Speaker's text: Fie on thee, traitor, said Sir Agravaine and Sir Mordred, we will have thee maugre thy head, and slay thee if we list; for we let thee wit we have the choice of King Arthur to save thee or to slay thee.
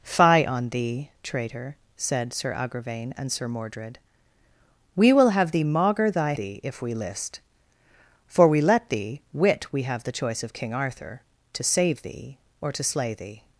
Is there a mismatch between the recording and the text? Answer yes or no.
yes